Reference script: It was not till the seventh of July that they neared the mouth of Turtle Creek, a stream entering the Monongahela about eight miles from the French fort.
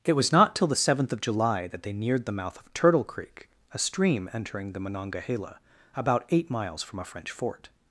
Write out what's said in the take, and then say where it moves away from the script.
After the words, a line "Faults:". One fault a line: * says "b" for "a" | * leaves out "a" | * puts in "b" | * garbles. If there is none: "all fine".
It was not till the seventh of July that they neared the mouth of Turtle Creek, a stream entering the Monongahela about eight miles from a French fort.
Faults:
* says "a" for "the"